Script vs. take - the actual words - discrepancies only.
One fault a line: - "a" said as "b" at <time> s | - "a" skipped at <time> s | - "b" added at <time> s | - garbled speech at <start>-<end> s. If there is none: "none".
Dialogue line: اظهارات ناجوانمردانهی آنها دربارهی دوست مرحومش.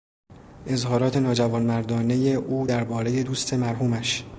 - "آنها" said as "او" at 2.3 s